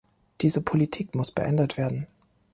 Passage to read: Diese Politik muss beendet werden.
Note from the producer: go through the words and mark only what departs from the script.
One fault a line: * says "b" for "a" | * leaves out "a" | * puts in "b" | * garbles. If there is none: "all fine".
all fine